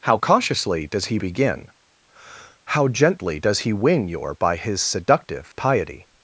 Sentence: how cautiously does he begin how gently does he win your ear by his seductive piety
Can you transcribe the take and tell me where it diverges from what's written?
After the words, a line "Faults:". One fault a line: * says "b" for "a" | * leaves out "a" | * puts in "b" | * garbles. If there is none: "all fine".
how cautiously does he begin how gently does he win your by his seductive piety
Faults:
* leaves out "ear"